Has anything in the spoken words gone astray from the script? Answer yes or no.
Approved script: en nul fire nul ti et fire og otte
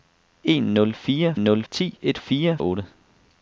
no